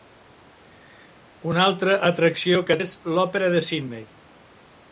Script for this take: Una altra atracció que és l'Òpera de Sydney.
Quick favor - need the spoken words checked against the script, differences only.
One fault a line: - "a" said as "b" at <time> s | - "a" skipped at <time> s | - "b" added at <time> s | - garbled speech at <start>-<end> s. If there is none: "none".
none